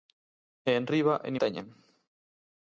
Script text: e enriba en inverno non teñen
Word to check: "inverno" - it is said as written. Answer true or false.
false